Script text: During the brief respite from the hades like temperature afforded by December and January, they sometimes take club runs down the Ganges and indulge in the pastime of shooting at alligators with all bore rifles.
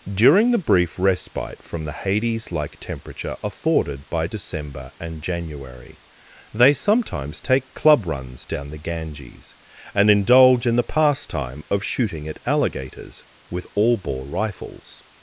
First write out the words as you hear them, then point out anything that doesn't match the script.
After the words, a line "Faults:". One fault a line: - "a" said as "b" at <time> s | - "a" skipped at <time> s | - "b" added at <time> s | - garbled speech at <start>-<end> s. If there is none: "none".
During the brief respite from the hades like temperature afforded by December and January, they sometimes take club runs down the Ganges and indulge in the pastime of shooting at alligators with all bore rifles.
Faults:
none